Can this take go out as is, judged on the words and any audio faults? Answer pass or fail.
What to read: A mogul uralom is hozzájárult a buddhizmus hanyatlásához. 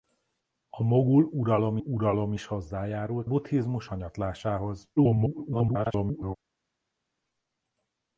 fail